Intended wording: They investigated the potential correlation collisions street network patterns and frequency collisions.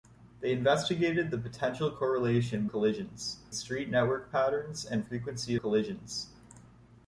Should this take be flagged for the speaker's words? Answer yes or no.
no